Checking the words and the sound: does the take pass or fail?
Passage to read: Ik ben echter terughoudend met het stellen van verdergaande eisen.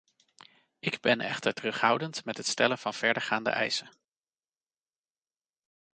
pass